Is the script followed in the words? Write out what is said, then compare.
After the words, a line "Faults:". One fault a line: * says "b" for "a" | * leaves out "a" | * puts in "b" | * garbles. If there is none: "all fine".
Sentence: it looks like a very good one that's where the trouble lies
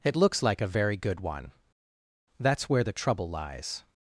it looks like a very good one that's where the trouble lies
Faults:
all fine